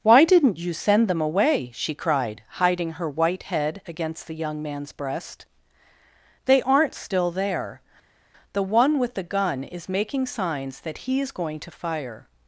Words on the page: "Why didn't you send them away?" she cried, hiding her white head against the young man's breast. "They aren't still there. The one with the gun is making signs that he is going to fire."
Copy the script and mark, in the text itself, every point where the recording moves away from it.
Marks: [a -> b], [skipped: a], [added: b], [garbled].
"Why didn't you send them away?" she cried, hiding her white head against the young man's breast. "They aren't still there. The one with the gun is making signs that he is going to fire."